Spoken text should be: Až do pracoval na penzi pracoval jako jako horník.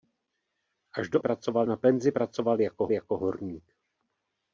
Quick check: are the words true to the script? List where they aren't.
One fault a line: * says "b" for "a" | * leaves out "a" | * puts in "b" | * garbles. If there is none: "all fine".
all fine